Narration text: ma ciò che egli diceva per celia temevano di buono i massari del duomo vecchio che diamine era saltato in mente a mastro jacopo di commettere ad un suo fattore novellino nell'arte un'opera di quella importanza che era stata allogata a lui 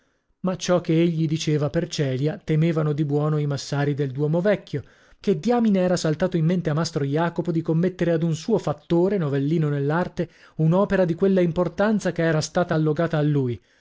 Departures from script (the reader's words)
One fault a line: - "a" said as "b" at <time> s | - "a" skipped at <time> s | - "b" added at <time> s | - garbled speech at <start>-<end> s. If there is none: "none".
none